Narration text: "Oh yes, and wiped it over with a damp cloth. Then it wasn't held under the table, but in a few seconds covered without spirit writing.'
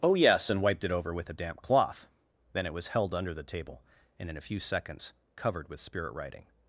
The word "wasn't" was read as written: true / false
false